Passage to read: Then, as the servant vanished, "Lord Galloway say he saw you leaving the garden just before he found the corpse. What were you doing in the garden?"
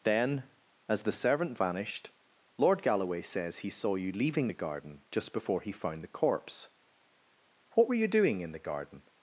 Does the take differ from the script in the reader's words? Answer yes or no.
yes